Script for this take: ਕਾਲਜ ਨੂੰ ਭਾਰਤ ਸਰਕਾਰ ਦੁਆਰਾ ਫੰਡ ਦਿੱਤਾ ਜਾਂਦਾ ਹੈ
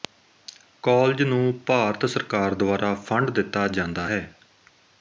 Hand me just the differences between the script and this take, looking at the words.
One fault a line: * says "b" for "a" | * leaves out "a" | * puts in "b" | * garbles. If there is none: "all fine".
all fine